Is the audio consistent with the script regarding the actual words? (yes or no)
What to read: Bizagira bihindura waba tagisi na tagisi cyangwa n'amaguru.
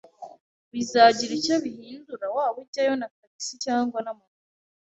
no